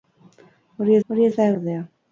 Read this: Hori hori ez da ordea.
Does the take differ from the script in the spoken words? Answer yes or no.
no